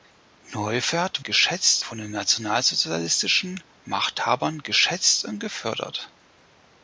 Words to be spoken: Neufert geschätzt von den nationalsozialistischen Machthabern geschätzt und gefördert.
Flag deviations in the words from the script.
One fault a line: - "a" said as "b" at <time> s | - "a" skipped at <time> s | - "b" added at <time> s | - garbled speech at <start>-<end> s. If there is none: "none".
none